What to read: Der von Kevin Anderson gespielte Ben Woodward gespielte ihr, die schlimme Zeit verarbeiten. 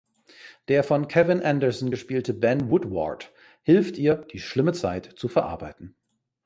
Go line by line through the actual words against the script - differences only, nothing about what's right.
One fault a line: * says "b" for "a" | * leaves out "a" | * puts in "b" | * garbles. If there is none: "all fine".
* says "hilft" for "gespielte"
* puts in "zu"